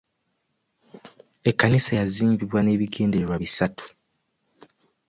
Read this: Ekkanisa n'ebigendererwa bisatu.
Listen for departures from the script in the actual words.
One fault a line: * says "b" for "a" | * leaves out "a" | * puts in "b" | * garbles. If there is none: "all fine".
* puts in "yazimbibwa"